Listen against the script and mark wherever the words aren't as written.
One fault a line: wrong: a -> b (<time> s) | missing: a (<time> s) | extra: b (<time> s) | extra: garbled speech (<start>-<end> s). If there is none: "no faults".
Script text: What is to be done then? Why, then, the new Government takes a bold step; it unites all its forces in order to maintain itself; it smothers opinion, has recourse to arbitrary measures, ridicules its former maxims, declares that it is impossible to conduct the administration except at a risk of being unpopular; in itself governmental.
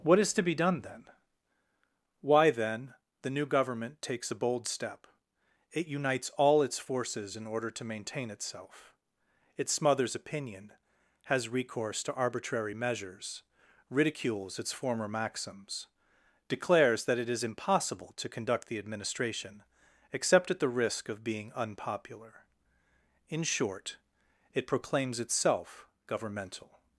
wrong: a -> the (20.6 s)
extra: short it proclaims (23.4 s)